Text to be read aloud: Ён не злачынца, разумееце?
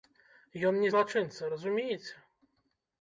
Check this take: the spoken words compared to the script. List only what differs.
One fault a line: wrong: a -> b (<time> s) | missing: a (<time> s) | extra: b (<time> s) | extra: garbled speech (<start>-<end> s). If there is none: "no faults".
no faults